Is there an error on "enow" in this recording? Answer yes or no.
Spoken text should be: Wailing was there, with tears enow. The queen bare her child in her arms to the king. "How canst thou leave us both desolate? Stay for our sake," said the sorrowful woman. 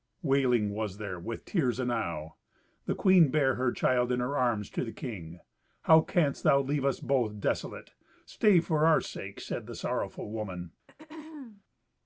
no